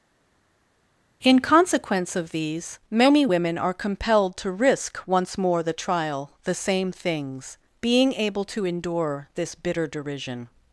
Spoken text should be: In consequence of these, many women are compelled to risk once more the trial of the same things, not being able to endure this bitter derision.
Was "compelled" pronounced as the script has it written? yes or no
yes